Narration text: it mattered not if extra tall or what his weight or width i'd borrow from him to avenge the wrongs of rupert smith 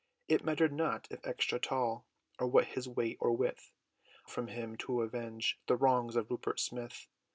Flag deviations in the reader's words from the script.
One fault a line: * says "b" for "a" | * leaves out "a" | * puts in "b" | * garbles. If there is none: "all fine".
* leaves out "i'd borrow"